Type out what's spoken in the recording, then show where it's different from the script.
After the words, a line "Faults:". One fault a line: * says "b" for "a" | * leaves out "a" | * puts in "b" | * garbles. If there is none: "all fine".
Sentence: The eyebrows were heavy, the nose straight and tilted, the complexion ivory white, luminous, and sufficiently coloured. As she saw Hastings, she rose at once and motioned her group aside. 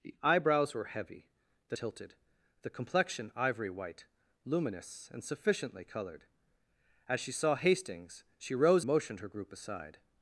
The eyebrows were heavy, the tilted, the complexion ivory white, luminous, and sufficiently coloured. As she saw Hastings, she rose motioned her group aside.
Faults:
* leaves out "nose straight and"
* leaves out "at once and"